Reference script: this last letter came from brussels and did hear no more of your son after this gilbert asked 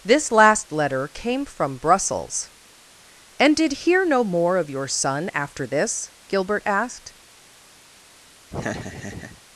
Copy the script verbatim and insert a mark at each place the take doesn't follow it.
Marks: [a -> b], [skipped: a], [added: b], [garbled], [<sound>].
this last letter came from brussels and did hear no more of your son after this gilbert asked [laugh]